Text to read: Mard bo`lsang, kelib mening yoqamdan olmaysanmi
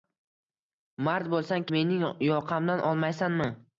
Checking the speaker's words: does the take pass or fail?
fail